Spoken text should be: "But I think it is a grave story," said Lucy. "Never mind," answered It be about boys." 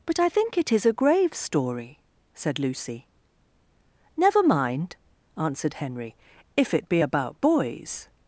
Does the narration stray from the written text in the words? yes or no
yes